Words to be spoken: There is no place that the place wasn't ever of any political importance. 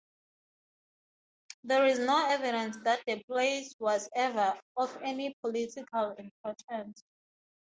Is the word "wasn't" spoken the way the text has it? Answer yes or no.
no